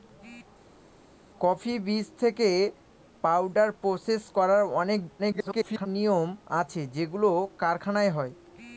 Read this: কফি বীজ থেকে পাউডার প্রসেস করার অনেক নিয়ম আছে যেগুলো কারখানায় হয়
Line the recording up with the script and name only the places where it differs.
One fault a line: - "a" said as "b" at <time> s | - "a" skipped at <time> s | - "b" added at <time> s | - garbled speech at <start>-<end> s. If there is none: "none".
- garbled speech at 5.2-5.9 s